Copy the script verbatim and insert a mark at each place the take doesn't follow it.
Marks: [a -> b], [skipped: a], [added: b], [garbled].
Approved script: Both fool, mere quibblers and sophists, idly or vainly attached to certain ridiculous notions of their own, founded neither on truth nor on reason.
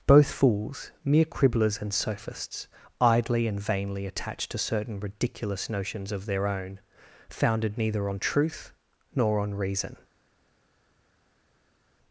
Both [fool, -> fools] mere quibblers and sophists, idly [or -> and] vainly attached to certain ridiculous notions of their own, founded neither on truth nor on reason.